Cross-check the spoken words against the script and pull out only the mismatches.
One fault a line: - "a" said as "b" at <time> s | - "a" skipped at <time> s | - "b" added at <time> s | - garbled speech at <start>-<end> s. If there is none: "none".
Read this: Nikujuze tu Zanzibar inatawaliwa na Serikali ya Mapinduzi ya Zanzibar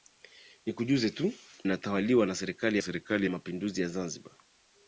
- "Zanzibar" skipped at 1.3 s
- "Serikali" added at 2.8 s